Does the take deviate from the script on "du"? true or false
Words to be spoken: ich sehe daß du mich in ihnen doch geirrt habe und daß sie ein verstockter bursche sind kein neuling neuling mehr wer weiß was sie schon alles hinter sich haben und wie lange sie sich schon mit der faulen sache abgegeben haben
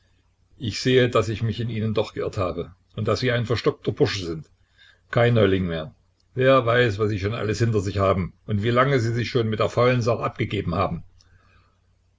true